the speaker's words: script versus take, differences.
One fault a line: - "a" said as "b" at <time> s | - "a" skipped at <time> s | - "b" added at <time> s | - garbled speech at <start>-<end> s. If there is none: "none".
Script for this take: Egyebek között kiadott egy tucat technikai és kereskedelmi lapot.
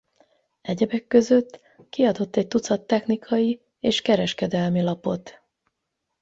none